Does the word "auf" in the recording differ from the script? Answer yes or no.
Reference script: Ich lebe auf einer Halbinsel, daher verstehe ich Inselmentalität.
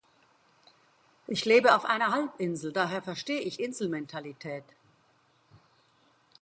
no